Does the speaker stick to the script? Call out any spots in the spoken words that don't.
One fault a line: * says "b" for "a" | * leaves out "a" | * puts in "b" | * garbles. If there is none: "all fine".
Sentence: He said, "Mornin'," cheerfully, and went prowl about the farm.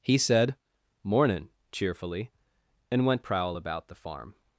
all fine